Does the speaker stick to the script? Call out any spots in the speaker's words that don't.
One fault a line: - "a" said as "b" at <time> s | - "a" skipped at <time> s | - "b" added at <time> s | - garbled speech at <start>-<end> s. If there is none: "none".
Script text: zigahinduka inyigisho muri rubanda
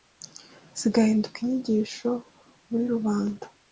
none